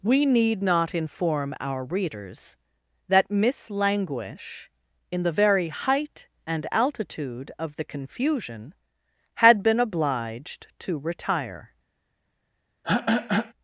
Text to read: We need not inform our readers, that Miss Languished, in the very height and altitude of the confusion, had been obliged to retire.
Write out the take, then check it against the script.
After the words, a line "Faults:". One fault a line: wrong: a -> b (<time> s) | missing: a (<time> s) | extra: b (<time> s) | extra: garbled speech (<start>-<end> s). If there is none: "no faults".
We need not inform our readers, that Miss Languish, in the very height and altitude of the confusion, had been obliged to retire.
Faults:
wrong: Languished -> Languish (3.7 s)